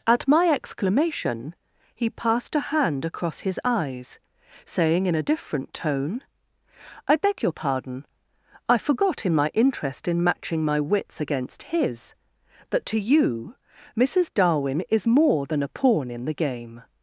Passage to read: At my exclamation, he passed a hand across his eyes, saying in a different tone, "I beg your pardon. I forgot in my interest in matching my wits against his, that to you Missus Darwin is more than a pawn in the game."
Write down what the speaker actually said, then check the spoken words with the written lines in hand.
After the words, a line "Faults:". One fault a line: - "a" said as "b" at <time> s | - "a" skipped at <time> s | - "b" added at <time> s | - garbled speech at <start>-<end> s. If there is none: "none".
At my exclamation, he passed a hand across his eyes, saying in a different tone, "I beg your pardon. I forgot in my interest in matching my wits against his, that to you Missus Darwin is more than a pawn in the game."
Faults:
none